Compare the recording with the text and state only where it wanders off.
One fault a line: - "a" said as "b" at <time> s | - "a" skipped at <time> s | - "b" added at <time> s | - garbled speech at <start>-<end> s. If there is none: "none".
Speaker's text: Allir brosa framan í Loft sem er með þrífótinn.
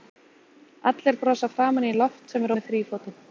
none